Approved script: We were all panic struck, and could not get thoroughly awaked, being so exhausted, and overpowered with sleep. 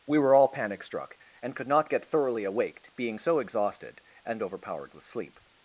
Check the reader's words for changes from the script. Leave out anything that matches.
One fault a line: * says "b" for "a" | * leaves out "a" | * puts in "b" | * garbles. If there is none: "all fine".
all fine